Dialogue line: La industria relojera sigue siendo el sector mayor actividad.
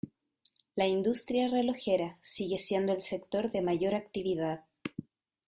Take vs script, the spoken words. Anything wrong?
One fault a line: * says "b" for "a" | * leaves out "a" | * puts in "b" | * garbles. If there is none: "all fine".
* puts in "de"